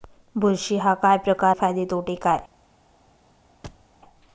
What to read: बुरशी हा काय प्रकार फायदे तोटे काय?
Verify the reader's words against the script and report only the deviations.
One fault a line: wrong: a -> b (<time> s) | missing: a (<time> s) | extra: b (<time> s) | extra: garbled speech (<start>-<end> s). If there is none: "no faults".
no faults